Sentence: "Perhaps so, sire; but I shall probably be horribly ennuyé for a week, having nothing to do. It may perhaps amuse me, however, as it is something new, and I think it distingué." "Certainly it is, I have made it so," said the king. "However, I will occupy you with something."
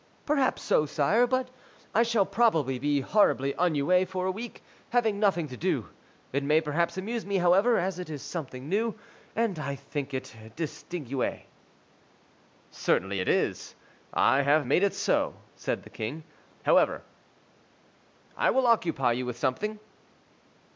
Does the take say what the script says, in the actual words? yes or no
yes